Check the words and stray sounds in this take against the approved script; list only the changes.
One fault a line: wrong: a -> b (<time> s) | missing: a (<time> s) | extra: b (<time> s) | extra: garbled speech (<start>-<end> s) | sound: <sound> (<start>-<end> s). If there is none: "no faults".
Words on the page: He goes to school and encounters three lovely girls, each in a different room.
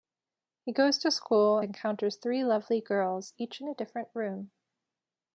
missing: and (1.6 s)